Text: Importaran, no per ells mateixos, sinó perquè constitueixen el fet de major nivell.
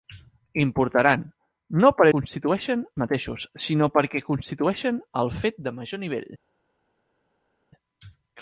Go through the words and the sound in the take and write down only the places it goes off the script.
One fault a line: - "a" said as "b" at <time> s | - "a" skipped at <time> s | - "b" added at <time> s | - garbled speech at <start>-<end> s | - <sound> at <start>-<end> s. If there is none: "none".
- "ells" said as "constitueixen" at 2.1 s